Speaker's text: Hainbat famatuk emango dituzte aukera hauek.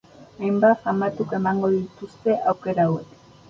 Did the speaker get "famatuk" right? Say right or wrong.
right